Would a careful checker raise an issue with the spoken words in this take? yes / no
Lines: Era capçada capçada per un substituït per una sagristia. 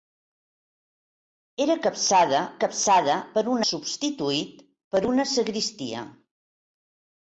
no